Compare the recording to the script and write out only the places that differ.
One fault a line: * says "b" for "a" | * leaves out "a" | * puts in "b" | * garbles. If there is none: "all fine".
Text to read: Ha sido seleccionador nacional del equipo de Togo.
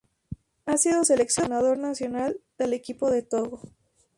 all fine